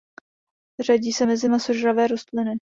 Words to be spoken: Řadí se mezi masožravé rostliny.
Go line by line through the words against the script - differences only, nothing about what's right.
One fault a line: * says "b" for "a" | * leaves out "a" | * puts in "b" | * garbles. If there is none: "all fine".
all fine